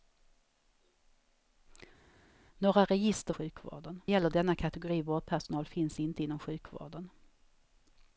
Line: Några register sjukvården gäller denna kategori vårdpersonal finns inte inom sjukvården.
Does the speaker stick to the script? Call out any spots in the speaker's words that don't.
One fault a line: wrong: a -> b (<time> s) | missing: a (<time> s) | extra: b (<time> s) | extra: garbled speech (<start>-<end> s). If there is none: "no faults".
no faults